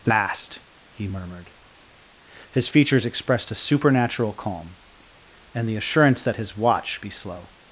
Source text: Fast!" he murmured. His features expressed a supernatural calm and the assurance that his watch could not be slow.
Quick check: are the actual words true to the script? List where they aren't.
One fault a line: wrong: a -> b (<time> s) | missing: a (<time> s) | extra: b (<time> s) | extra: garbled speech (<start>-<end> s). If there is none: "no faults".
missing: could not (7.0 s)